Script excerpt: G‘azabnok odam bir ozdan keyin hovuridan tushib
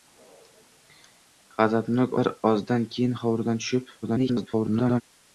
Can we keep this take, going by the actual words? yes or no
no